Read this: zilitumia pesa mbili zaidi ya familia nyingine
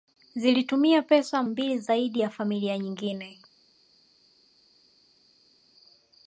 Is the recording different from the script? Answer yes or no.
no